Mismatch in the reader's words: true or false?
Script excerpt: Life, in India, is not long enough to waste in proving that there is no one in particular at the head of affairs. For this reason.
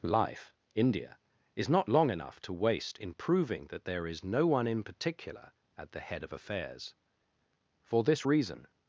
true